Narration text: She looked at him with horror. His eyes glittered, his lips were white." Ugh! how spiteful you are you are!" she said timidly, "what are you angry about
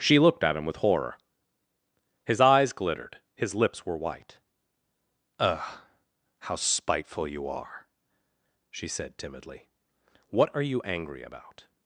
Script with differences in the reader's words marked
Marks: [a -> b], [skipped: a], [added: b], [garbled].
She looked at him with horror. His eyes glittered, his lips were white." Ugh! how spiteful you are [skipped: you are!"] she said timidly, "what are you angry about